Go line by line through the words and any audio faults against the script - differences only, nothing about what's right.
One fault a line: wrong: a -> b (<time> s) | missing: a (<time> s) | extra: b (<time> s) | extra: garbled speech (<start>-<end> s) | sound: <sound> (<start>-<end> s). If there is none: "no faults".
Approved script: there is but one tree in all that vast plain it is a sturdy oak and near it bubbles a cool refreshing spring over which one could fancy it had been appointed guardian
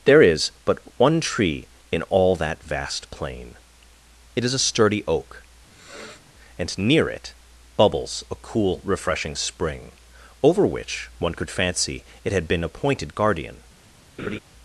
sound: sniff (5.7-6.3 s)
sound: laugh (14.2-14.4 s)